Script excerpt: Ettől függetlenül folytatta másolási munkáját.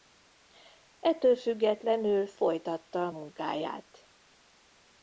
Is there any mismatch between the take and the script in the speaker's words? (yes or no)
yes